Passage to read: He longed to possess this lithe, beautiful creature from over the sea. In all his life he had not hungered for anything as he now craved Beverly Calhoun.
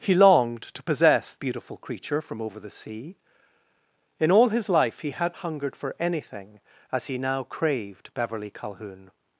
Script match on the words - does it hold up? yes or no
no